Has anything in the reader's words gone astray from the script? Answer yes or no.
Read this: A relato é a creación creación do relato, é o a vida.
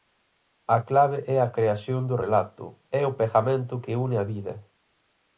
yes